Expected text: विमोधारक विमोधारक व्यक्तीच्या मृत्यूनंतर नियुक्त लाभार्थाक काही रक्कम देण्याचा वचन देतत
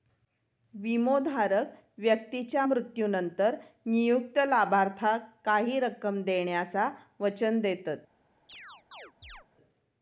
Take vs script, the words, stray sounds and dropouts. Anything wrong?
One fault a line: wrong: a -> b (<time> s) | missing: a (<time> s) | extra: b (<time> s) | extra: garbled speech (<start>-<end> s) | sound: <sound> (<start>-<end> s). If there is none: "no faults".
missing: विमोधारक (1.7 s)
sound: chirp (8.5-9.5 s)